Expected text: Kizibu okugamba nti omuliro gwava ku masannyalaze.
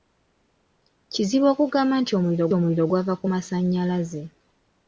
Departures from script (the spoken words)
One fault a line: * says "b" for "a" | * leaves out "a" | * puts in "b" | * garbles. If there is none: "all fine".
* puts in "omuliro"